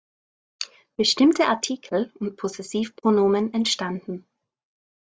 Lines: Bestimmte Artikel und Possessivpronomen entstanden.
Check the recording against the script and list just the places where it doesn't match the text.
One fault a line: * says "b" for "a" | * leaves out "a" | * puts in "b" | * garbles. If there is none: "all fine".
all fine